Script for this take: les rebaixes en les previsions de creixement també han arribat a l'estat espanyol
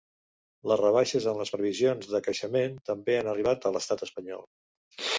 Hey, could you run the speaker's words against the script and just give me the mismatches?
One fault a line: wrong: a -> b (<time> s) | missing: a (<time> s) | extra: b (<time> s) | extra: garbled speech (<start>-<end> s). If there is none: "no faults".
no faults